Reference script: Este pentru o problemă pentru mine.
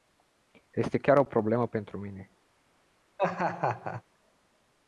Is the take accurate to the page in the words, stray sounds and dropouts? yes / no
no